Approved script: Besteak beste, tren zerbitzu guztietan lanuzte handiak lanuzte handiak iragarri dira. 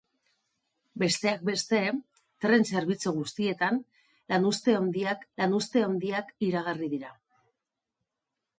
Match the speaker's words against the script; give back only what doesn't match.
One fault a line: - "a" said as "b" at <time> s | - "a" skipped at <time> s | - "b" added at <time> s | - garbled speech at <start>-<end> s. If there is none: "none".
none